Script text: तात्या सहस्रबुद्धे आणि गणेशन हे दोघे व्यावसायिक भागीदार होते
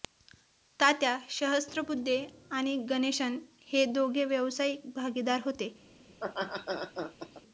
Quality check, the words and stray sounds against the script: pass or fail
fail